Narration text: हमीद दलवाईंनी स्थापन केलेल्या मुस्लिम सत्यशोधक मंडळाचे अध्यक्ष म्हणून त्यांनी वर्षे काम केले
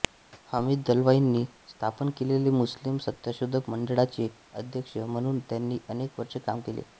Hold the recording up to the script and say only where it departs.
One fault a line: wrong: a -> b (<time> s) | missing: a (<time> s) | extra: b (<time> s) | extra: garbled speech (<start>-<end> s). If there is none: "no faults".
extra: अनेक (5.9 s)